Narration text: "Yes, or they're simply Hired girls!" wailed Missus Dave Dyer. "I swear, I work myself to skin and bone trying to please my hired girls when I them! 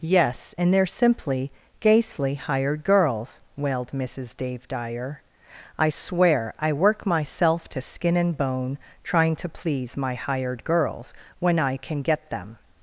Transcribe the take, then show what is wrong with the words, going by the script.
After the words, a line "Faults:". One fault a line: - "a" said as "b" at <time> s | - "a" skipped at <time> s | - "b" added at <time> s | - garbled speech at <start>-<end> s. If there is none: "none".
"Yes, and they're simply GHASTLY hired girls!" wailed Missus Dave Dyer. "I swear, I work myself to skin and bone trying to please my hired girls when I can get them!
Faults:
- "or" said as "and" at 0.6 s
- "GHASTLY" added at 1.8 s
- "can get" added at 11.8 s